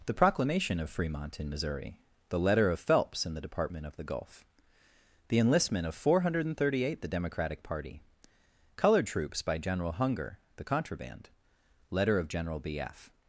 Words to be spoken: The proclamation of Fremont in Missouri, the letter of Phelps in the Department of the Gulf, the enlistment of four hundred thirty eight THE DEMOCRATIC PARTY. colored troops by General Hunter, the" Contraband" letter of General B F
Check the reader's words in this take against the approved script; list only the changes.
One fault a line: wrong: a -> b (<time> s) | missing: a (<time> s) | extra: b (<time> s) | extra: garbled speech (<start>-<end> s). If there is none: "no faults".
wrong: Hunter -> Hunger (9.9 s)